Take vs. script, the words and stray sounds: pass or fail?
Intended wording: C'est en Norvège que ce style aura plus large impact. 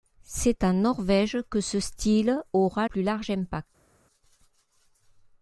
pass